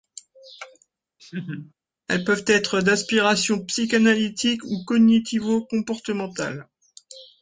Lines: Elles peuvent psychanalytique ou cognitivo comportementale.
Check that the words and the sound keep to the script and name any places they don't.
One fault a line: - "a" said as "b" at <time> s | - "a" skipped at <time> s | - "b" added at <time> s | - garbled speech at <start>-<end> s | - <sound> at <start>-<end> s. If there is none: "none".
- laugh at 1.2-1.7 s
- "être d'inspiration" added at 2.4 s